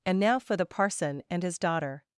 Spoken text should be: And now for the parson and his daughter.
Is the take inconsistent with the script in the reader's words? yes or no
no